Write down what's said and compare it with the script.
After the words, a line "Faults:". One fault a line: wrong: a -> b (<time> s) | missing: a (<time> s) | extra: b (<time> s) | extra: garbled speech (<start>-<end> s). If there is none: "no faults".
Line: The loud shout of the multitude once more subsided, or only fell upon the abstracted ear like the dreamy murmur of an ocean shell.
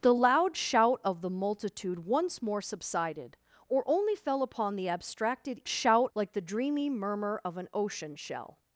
The loud shout of the multitude once more subsided, or only fell upon the abstracted shout like the dreamy murmur of an ocean shell.
Faults:
wrong: ear -> shout (5.7 s)